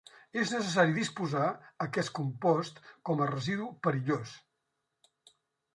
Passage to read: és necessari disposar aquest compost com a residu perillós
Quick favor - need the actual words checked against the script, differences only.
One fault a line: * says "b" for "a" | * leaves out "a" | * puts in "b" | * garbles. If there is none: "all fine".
all fine